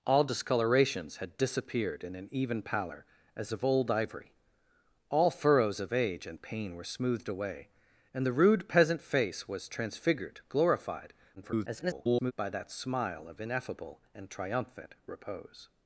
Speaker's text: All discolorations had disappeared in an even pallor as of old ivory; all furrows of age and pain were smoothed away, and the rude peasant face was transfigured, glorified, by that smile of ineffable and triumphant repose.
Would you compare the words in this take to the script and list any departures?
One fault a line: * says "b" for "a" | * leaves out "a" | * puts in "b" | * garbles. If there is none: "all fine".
* garbles